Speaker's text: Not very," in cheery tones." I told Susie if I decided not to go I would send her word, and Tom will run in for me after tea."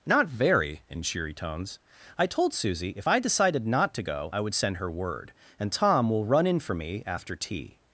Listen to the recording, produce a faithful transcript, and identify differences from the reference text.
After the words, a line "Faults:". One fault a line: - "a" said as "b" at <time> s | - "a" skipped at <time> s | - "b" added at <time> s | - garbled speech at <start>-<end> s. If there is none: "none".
Not very," in cheery tones." I told Susie if I decided not to go I would send her word, and Tom will run in for me after tea."
Faults:
none